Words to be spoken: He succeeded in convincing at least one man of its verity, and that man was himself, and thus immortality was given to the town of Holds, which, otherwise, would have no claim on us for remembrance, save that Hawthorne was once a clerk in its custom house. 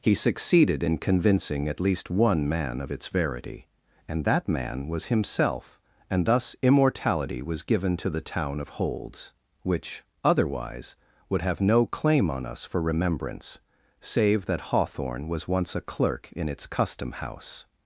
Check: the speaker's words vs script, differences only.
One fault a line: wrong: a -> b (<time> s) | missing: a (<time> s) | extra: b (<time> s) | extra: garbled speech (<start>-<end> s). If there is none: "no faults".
no faults